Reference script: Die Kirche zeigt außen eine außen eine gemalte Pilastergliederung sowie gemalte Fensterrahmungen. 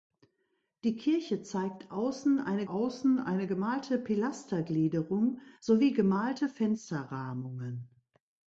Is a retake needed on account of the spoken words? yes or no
no